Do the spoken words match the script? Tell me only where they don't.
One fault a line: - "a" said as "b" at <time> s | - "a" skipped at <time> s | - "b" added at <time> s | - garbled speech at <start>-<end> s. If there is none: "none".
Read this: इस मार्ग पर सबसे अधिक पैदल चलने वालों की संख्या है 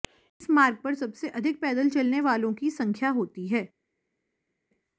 - "होती" added at 3.1 s